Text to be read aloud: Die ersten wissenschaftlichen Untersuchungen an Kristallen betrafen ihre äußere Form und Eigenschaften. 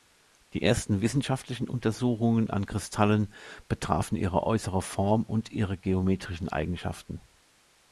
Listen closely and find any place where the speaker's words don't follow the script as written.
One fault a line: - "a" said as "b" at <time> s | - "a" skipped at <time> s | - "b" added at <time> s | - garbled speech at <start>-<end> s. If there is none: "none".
- "ihre geometrischen" added at 5.5 s